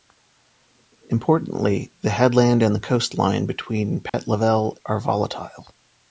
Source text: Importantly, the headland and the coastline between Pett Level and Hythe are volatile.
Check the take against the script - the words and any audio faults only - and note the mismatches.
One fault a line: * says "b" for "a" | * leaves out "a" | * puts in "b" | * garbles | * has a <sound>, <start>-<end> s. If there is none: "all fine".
* has a dropout, 4.1-4.1 s
* leaves out "and Hythe"